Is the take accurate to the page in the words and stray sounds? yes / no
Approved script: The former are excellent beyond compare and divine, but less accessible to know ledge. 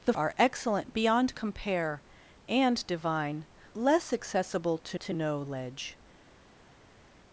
no